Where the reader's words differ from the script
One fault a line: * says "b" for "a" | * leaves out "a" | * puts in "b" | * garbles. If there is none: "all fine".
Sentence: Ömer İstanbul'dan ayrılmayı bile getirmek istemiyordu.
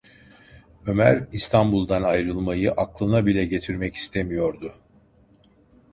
* puts in "aklına"